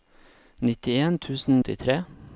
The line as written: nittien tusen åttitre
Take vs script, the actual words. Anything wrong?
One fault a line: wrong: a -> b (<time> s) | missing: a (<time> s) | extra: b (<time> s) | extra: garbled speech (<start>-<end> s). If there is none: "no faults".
no faults